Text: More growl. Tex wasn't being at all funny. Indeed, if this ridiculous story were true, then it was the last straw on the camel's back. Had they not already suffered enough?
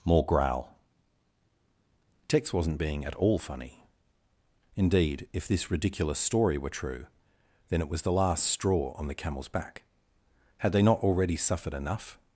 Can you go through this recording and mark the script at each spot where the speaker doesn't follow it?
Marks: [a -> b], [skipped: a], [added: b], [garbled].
More growl. Tex wasn't being at all funny. Indeed, if this ridiculous story were true, then it was the last straw on the camel's back. Had they not already suffered enough?